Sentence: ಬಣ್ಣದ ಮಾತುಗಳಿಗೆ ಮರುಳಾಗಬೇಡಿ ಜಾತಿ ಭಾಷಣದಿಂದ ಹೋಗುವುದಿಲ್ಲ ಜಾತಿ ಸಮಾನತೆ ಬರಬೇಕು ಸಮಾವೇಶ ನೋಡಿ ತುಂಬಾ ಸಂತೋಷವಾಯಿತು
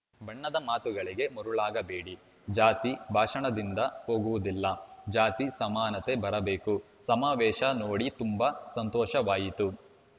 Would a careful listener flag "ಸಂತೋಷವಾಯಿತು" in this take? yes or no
no